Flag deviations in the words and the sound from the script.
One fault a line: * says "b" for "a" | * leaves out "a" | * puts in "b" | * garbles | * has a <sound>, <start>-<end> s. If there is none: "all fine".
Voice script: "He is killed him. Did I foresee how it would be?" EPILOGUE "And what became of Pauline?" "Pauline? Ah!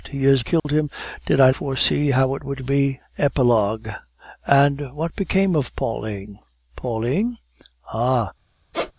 * has a dropout, 0.6-0.6 s
* has a squeak, 8.7-8.9 s